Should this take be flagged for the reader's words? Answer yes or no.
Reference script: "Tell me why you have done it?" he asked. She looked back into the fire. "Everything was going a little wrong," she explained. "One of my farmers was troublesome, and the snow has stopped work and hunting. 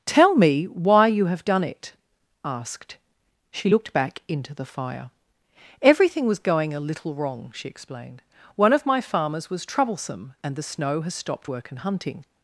yes